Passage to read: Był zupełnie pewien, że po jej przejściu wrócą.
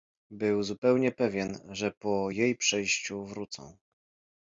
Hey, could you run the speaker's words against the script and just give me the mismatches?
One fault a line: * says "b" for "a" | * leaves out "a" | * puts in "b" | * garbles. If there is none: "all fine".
all fine